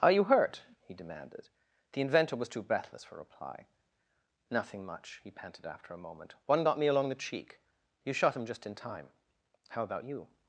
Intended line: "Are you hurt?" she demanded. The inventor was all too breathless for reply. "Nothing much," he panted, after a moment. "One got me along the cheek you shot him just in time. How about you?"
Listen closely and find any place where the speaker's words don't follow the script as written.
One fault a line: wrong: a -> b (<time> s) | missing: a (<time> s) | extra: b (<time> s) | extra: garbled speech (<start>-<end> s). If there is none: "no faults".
wrong: she -> he (0.8 s)
missing: all (2.5 s)